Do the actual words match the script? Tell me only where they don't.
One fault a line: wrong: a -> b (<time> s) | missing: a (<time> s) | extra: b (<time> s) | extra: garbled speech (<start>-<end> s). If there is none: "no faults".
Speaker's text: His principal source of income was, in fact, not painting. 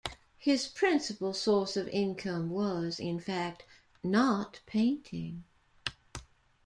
no faults